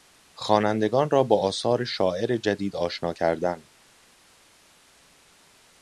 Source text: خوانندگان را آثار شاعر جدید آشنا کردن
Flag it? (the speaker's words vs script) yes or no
yes